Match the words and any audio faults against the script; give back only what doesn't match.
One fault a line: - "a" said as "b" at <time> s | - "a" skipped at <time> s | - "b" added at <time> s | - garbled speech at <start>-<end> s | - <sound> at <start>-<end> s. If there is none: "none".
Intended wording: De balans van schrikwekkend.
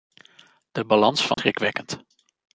- dropout at 1.3-1.4 s